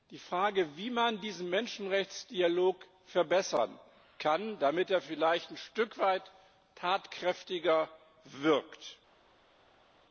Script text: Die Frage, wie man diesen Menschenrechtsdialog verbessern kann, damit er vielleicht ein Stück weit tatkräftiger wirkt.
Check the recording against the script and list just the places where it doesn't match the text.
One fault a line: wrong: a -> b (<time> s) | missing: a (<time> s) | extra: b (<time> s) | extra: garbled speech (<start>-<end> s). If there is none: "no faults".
no faults